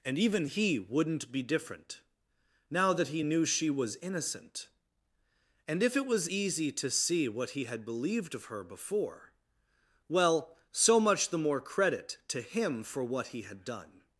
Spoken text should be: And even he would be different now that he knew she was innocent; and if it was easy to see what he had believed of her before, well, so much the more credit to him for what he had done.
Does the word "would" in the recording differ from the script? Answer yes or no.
yes